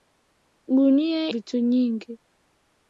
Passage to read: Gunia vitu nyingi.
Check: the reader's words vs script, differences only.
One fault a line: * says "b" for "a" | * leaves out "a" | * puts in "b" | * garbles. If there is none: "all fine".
all fine